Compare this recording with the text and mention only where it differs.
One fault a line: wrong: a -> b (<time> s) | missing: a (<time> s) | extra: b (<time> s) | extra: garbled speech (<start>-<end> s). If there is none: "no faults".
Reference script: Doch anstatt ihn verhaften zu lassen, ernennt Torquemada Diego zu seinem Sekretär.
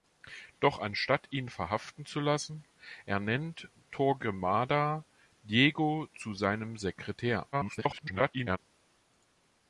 extra: garbled speech (7.5-8.6 s)